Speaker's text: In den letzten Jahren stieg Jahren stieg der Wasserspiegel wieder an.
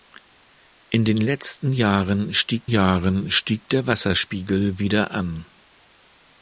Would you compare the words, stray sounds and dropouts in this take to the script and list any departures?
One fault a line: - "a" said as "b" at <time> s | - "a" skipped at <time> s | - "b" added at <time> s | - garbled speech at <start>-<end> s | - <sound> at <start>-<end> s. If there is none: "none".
none